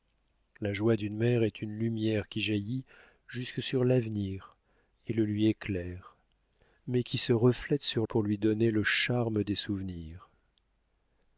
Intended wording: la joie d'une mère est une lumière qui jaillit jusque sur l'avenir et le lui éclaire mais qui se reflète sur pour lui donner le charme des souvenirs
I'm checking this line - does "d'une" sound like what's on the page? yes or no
yes